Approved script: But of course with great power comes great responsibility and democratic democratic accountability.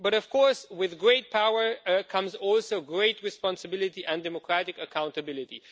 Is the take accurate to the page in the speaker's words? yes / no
no